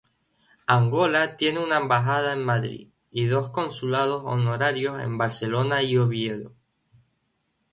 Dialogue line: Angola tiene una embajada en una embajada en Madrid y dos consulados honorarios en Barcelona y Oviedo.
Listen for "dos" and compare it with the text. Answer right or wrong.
right